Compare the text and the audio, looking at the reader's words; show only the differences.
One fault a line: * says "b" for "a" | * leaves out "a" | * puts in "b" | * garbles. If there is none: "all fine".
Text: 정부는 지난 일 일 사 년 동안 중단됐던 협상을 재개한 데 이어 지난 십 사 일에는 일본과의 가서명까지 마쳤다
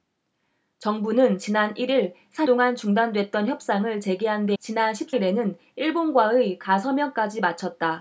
* leaves out "년"
* leaves out "이어"
* leaves out "사"